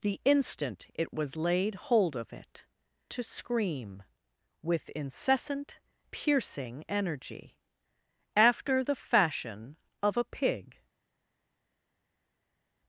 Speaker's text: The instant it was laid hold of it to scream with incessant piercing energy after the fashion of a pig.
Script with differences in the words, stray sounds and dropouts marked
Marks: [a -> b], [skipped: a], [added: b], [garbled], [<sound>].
The instant it was laid hold of it to scream with incessant piercing energy after the fashion of a pig.